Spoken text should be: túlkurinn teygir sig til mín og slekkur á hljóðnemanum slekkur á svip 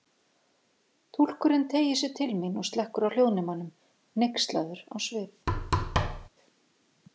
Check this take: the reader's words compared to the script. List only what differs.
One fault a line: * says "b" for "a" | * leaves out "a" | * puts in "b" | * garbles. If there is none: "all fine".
* says "hneykslaður" for "slekkur"